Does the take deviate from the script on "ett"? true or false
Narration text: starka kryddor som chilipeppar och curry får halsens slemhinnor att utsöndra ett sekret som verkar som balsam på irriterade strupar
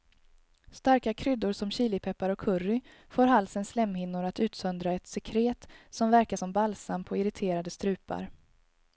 false